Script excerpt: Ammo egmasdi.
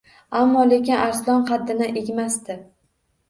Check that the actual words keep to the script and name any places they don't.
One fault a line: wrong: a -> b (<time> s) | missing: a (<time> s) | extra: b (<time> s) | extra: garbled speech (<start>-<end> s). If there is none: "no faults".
extra: lekin Arslon qaddini (0.7 s)